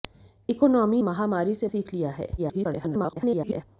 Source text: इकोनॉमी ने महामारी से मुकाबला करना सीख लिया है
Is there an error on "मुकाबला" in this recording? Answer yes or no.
yes